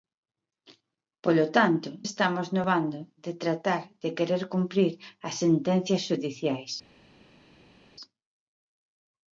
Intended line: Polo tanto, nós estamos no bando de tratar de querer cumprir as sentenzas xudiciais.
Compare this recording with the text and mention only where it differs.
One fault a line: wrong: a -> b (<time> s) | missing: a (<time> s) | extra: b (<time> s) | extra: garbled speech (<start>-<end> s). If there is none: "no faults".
missing: nós (1.9 s)